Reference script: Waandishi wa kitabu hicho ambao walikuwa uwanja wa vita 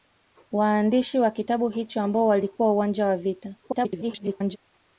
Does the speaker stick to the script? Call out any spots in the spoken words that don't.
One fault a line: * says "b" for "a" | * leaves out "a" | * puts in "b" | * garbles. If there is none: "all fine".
* garbles